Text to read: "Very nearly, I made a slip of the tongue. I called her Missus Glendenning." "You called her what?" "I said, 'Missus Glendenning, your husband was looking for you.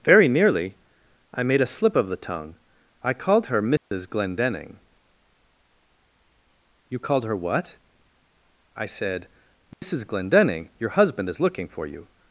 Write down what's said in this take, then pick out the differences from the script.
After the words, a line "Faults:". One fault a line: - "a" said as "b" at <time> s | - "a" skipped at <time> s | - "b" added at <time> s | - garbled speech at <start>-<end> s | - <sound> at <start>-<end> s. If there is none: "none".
"Very nearly, I made a slip of the tongue. I called her Missus Glendenning." "You called her what?" "I said, 'Missus Glendenning, your husband is looking for you.
Faults:
- dropout at 3.8-3.9 s
- dropout at 9.7-9.8 s
- "was" said as "is" at 11.3 s